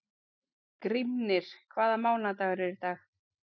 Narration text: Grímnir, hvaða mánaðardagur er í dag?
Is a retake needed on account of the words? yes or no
no